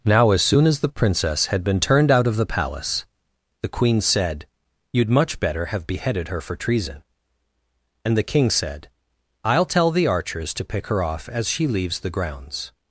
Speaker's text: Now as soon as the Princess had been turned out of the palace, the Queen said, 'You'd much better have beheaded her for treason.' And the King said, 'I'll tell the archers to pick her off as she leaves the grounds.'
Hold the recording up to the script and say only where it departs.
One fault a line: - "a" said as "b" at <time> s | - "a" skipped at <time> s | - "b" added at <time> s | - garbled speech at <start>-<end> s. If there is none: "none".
none